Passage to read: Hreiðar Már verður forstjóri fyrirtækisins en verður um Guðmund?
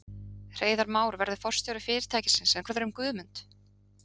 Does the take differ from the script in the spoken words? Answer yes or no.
no